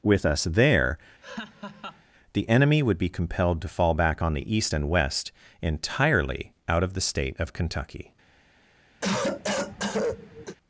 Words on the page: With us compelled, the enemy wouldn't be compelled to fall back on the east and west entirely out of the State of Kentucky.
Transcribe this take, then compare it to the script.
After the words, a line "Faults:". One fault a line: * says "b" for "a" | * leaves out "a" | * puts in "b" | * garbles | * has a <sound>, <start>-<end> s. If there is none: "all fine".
With us there, the enemy would be compelled to fall back on the east and west entirely out of the State of Kentucky.
Faults:
* says "there" for "compelled"
* has a laugh, 1.2-2.0 s
* says "would" for "wouldn't"
* has a cough, 9.0-10.6 s